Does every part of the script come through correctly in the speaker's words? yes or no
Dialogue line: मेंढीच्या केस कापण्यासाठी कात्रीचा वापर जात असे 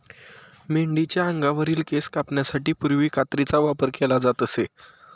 no